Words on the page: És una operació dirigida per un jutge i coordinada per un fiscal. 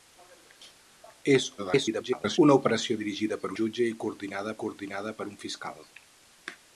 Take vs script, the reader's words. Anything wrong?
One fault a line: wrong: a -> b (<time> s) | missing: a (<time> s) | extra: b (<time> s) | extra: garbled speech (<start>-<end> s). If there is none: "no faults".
extra: garbled speech (1.6-2.4 s)
missing: un (3.5 s)
extra: coordinada (4.6 s)